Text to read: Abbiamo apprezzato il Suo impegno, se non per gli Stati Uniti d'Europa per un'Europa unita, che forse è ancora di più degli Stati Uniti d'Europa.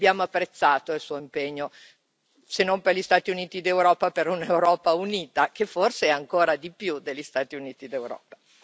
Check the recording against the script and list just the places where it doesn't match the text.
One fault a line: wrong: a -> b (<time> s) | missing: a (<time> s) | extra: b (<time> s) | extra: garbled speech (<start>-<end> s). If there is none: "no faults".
no faults